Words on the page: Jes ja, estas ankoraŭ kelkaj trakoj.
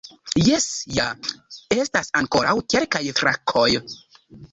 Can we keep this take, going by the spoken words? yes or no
yes